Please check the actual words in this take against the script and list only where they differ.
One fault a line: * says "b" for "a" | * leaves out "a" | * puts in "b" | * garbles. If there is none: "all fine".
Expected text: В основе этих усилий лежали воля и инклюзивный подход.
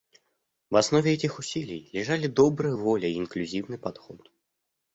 * puts in "добрая"